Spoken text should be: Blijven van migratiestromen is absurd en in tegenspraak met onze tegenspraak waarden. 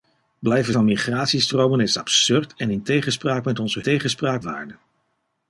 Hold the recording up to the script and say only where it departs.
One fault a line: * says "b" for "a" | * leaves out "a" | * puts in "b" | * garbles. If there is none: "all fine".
all fine